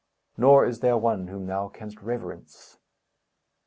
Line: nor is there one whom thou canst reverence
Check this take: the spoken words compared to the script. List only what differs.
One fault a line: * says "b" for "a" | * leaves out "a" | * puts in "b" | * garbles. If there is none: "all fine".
all fine